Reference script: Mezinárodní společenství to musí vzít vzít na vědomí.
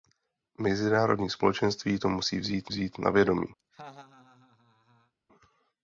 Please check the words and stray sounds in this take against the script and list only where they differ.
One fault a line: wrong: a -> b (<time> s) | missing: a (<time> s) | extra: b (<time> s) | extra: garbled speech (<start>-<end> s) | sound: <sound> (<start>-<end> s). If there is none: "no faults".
sound: laugh (3.6-5.1 s)